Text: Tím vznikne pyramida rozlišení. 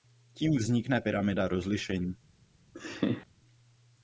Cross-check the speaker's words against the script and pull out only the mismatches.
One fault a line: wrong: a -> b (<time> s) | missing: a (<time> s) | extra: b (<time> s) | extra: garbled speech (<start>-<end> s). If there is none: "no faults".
no faults